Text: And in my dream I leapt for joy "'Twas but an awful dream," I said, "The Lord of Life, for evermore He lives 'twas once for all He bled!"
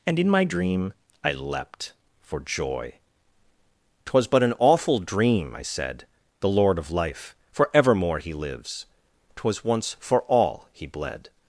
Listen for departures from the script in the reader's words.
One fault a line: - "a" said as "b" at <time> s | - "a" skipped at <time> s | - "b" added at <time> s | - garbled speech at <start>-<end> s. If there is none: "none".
none